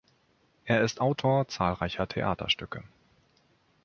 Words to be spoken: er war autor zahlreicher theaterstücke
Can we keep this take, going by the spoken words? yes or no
no